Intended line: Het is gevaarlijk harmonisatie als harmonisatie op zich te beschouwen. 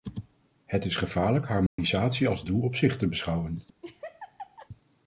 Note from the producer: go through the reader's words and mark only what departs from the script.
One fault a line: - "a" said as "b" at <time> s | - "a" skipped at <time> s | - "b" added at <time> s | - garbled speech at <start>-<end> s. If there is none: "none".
- "harmonisatie" said as "doel" at 2.4 s